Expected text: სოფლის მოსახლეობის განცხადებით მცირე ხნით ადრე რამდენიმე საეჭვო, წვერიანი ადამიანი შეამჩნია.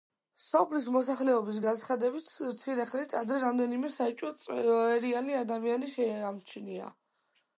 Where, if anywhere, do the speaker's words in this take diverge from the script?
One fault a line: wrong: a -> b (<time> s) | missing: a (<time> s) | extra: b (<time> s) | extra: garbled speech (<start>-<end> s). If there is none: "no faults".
no faults